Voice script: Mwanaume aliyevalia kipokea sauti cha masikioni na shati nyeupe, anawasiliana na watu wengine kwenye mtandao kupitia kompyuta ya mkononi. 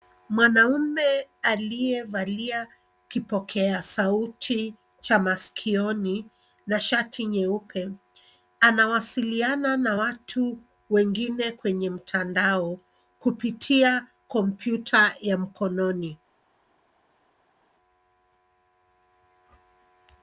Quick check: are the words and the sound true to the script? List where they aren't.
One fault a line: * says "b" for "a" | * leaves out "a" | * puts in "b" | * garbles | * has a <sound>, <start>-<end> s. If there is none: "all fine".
all fine